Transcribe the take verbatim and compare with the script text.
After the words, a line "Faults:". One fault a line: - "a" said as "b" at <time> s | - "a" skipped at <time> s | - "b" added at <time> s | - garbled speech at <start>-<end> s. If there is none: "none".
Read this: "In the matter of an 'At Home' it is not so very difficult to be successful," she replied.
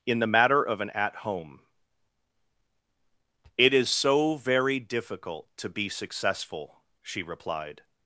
"In the matter of an 'At Home' it is so very difficult to be successful," she replied.
Faults:
- "not" skipped at 3.9 s